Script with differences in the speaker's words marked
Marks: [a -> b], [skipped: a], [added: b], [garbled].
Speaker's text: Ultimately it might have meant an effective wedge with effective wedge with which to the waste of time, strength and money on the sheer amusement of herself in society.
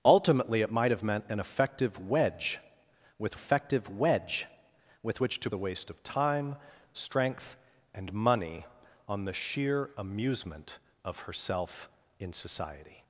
Ultimately it might have meant an effective wedge with effective wedge with which to the waste of time, strength and money on the sheer amusement of herself in society.